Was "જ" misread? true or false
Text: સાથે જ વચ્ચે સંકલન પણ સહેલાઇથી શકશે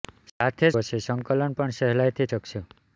false